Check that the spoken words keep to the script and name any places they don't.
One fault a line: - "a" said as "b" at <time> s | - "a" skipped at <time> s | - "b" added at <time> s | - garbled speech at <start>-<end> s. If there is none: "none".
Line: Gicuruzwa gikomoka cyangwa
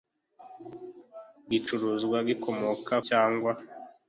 none